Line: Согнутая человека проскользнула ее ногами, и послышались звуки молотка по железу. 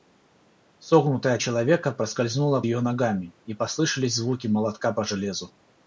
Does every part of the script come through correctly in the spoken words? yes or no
yes